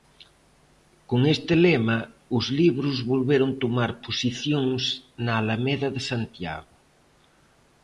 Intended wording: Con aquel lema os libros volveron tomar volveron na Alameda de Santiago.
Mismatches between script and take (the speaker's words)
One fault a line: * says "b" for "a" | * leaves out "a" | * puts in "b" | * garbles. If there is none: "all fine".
* says "este" for "aquel"
* says "posicións" for "volveron"